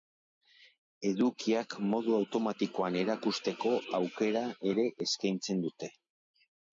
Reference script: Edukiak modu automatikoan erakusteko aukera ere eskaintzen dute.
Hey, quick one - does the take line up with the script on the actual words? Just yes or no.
yes